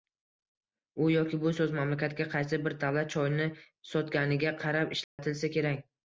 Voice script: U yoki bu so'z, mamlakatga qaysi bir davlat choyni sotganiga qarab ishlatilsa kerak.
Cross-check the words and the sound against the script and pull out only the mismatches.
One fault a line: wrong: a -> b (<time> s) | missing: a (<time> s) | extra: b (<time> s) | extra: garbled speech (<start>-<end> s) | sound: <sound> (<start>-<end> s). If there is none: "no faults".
sound: dropout (5.0-5.2 s)